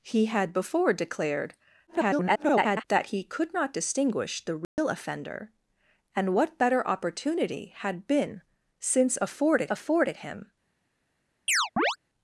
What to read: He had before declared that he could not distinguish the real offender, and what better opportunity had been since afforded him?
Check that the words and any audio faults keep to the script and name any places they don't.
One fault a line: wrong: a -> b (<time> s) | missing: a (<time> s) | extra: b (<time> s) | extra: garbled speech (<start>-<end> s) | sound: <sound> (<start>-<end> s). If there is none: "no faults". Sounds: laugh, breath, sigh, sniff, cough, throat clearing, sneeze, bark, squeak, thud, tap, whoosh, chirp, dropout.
extra: garbled speech (1.9-2.8 s)
sound: dropout (4.6-4.8 s)
extra: afforded (9.7 s)
sound: chirp (11.5-12.0 s)